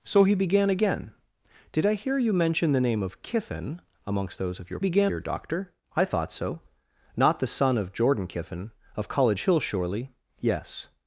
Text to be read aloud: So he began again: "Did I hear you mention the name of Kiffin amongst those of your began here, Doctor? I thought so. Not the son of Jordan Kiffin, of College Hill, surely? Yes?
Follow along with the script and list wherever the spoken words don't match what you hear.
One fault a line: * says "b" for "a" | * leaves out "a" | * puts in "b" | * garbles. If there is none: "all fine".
all fine